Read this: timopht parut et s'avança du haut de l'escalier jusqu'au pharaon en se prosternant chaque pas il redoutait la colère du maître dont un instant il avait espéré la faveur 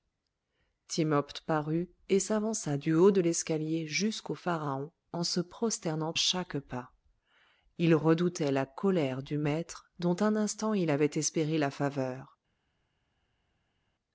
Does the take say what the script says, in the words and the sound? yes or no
yes